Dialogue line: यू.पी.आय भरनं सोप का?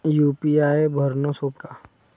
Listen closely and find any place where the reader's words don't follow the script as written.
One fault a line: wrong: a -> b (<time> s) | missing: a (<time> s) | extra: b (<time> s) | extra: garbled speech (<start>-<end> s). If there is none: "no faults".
no faults